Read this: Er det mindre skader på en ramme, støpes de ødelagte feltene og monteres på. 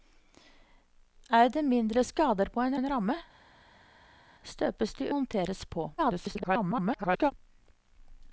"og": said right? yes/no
no